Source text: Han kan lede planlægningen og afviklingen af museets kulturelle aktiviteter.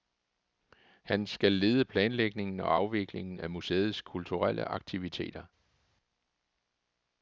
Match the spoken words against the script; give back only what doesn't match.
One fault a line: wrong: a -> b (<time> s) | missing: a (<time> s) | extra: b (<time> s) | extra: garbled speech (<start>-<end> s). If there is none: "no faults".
wrong: kan -> skal (1.3 s)